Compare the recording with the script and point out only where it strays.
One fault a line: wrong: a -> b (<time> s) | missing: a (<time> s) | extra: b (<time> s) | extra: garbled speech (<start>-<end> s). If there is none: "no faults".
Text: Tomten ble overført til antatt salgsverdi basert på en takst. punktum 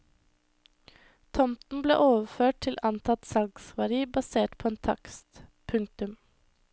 no faults